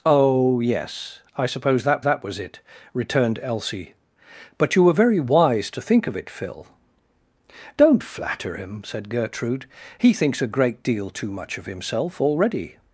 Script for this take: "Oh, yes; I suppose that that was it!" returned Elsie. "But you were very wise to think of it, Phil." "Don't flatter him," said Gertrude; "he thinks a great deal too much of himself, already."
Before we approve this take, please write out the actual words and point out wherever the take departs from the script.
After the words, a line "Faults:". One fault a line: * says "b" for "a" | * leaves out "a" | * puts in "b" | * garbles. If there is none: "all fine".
"Oh, yes; I suppose that that was it!" returned Elsie. "But you were very wise to think of it, Phil." "Don't flatter him," said Gertrude; "he thinks a great deal too much of himself, already."
Faults:
all fine